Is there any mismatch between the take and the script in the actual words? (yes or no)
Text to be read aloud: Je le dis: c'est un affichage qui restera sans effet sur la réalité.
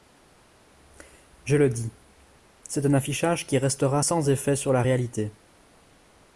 no